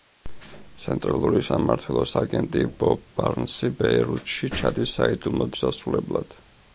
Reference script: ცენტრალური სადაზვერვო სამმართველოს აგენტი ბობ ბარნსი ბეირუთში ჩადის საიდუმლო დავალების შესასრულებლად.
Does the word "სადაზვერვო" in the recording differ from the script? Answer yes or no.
yes